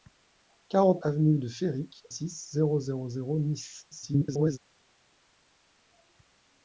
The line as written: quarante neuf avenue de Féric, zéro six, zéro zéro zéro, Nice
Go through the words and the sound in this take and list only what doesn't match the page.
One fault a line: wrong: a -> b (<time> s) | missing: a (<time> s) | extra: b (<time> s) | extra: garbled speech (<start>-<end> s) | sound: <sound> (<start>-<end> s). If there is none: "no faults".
missing: neuf (1.0 s)
missing: zéro (2.1 s)
extra: garbled speech (3.9-4.6 s)